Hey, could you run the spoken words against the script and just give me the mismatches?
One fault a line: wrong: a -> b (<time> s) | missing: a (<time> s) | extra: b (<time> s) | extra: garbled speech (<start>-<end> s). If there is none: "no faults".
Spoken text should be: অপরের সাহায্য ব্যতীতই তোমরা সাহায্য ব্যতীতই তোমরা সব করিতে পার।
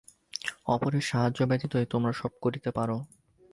missing: সাহায্য ব্যতীতই তোমরা (2.1 s)